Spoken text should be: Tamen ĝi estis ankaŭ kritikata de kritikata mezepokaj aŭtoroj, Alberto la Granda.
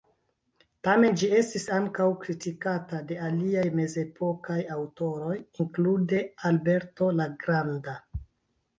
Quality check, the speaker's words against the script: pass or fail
fail